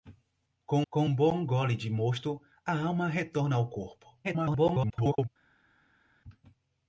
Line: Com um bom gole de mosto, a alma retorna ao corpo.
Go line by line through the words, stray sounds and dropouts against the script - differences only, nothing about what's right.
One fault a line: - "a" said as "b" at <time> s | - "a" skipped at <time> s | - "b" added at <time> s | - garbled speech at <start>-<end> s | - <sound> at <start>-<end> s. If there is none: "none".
- "com" added at 0.9 s
- garbled speech at 4.2-5.3 s